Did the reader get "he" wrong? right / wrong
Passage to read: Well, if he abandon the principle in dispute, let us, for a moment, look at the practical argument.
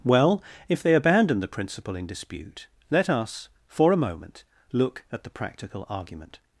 wrong